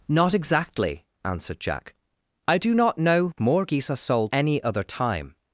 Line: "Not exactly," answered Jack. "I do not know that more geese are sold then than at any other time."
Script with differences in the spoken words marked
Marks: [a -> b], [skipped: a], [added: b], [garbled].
"Not exactly," answered Jack. "I do not know [skipped: that] more geese are sold [skipped: then than at] any other time."